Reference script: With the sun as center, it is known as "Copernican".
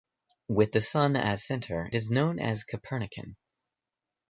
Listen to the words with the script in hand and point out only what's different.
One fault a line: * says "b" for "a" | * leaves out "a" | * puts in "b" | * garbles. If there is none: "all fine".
* leaves out "it"